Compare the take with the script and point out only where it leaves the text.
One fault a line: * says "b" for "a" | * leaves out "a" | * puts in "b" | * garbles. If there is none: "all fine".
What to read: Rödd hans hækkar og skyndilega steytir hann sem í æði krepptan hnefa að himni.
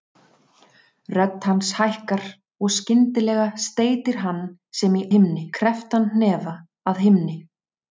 * says "himni" for "æði"